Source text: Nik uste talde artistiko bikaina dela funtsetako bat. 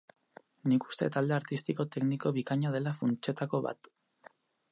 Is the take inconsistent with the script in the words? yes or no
yes